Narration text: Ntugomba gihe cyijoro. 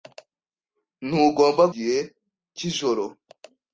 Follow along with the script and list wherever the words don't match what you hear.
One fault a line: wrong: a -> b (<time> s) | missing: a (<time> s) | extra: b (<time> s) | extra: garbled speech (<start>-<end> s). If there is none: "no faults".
no faults